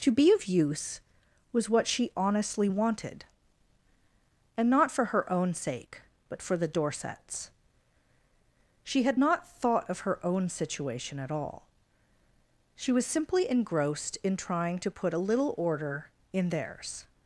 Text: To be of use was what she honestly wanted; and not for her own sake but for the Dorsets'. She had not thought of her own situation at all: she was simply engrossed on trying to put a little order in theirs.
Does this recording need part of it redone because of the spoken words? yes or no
yes